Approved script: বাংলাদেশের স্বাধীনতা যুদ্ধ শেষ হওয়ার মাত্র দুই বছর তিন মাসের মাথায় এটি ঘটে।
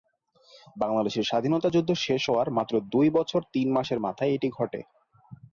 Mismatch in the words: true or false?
false